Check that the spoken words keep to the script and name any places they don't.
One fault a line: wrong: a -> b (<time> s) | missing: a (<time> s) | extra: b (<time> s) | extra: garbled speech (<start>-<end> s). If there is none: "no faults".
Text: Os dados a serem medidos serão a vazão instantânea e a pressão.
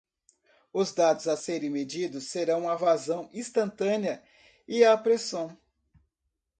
no faults